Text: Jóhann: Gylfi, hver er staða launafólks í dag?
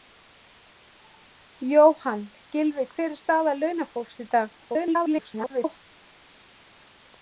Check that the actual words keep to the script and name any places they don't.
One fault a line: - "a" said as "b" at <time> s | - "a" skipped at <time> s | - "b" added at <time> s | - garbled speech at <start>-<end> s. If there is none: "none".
- garbled speech at 4.6-5.8 s